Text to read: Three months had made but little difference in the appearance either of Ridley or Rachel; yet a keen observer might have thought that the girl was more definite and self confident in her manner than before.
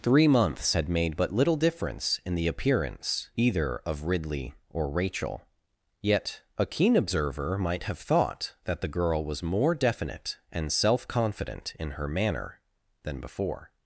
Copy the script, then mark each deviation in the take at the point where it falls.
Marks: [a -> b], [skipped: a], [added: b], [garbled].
Three months had made but little difference in the appearance either of Ridley or Rachel; yet a keen observer might have thought that the girl was more definite and self confident in her manner than before.